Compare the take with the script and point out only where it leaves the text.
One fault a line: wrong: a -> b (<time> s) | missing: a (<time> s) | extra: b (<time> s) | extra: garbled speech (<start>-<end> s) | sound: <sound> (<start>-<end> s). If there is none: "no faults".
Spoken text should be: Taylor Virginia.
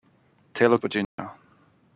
sound: dropout (1.0-1.2 s)